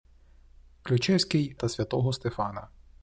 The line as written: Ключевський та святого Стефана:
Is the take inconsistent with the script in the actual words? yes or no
no